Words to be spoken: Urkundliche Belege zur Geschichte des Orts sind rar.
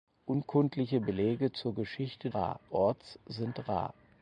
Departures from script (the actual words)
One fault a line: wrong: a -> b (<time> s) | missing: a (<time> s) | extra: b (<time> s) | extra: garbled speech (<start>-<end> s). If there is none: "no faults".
wrong: des -> rar (2.3 s)